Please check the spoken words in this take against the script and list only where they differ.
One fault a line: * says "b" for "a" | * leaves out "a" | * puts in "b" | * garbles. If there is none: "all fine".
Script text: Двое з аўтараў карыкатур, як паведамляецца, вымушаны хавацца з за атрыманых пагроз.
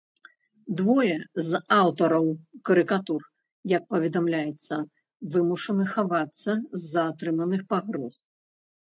all fine